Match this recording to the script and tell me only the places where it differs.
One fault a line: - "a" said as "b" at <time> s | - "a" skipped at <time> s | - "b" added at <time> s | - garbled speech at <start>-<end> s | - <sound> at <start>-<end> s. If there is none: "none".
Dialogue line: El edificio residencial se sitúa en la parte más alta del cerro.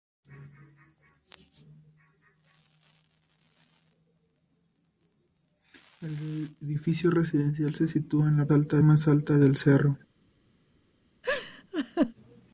- "parte" said as "alta" at 8.5 s
- laugh at 11.2-12.1 s